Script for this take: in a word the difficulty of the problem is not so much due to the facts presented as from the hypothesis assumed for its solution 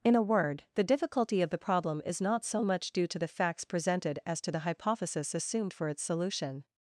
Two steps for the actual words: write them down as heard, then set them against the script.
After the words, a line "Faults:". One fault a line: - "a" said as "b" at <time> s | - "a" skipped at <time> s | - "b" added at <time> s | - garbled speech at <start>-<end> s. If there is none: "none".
in a word the difficulty of the problem is not so much due to the facts presented as to the hypothesis assumed for its solution
Faults:
- "from" said as "to" at 4.4 s